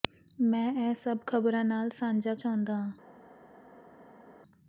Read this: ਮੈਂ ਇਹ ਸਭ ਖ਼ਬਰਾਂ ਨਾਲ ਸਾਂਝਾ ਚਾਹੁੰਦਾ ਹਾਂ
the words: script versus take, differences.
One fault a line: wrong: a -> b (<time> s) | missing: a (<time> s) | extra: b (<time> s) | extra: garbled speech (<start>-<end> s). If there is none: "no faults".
no faults